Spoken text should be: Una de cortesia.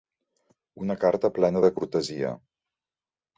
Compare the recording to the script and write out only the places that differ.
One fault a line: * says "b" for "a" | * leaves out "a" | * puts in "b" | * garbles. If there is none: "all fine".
* puts in "carta plena"